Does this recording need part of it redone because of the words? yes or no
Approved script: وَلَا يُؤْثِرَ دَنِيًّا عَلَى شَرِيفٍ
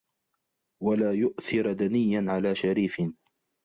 no